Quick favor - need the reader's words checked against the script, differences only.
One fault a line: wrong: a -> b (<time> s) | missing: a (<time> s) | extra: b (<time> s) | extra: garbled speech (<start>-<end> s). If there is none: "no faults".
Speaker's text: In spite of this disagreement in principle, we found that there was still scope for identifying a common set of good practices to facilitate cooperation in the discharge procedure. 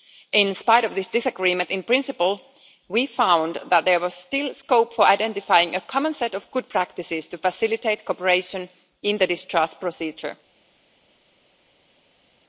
no faults